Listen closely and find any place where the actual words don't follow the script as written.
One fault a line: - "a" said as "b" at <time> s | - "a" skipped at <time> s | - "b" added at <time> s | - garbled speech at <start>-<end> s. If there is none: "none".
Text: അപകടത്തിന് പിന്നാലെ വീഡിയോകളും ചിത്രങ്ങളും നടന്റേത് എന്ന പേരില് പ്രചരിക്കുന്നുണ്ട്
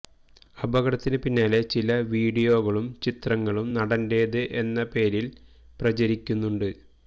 - "ചില" added at 1.7 s